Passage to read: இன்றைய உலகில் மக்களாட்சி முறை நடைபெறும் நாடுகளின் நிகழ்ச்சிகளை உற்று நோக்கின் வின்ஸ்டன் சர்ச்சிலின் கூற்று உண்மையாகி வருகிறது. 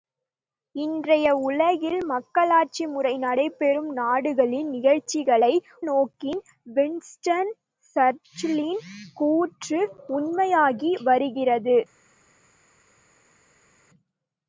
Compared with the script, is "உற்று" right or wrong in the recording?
wrong